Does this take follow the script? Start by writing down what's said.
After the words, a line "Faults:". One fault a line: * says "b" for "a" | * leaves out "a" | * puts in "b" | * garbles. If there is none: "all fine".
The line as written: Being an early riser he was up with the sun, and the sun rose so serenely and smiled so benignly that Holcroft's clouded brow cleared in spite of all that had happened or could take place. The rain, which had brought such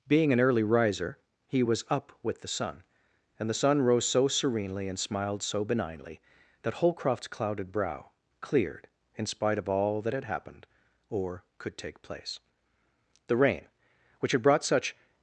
Being an early riser he was up with the sun, and the sun rose so serenely and smiled so benignly that Holcroft's clouded brow cleared in spite of all that had happened or could take place. The rain, which had brought such
Faults:
all fine